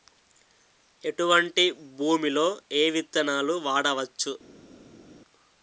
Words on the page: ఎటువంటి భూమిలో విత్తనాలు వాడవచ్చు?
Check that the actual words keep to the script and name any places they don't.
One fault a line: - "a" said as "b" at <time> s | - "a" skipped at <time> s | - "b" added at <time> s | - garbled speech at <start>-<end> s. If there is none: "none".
- "ఏ" added at 2.7 s